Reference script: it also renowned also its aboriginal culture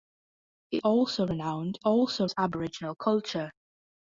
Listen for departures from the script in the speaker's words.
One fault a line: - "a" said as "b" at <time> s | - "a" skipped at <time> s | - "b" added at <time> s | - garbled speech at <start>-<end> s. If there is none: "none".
none